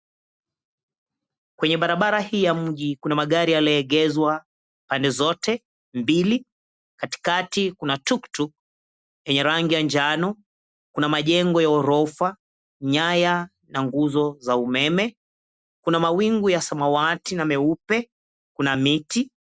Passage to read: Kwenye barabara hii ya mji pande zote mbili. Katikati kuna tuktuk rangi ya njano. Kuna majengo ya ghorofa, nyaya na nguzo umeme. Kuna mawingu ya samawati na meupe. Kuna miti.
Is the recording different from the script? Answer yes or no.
yes